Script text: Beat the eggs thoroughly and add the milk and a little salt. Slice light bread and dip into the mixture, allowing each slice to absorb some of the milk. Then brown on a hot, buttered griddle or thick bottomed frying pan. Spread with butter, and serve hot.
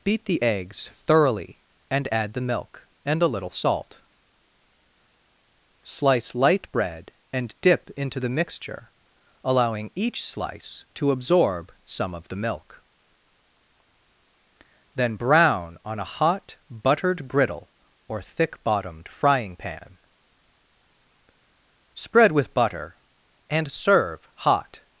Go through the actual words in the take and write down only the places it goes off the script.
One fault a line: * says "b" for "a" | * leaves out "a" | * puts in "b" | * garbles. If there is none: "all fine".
all fine